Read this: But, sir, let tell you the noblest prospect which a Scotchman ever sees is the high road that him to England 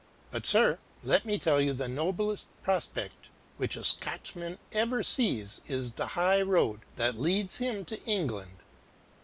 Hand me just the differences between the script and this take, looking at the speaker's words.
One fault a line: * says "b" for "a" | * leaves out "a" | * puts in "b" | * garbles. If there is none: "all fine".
* puts in "me"
* puts in "leads"